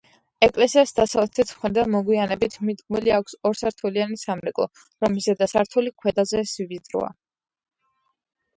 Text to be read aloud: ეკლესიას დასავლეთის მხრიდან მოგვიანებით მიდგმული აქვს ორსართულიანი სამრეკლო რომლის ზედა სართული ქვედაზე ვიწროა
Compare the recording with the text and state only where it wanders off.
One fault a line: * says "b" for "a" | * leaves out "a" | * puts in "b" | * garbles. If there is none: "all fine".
all fine